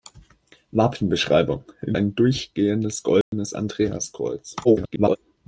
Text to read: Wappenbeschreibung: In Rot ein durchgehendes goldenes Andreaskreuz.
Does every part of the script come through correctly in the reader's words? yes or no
no